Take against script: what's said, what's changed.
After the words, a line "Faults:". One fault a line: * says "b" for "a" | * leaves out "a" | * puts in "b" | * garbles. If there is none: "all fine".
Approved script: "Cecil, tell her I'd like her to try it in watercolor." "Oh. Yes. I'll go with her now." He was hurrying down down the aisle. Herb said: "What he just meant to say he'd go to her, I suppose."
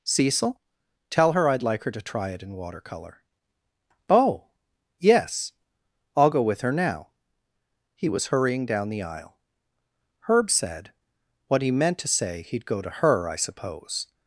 "Cecil, tell her I'd like her to try it in watercolor." "Oh. Yes. I'll go with her now." He was hurrying down the aisle. Herb said: "What he meant to say he'd go to her, I suppose."
Faults:
* leaves out "down"
* leaves out "just"